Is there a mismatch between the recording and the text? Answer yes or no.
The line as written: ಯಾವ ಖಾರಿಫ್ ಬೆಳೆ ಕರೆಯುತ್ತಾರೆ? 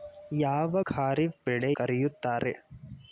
no